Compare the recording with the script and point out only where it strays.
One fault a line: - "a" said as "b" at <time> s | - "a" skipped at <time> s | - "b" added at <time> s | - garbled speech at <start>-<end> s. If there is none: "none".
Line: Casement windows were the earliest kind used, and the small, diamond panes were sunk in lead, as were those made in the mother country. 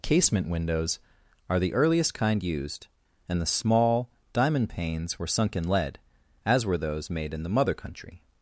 - "were" said as "are" at 1.5 s